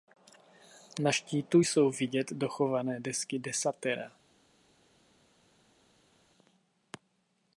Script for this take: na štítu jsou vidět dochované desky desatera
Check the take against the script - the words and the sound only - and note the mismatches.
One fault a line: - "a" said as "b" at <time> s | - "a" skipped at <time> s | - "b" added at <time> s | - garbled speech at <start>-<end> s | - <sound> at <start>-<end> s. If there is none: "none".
none